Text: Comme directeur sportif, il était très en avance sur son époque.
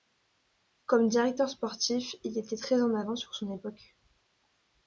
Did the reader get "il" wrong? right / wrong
right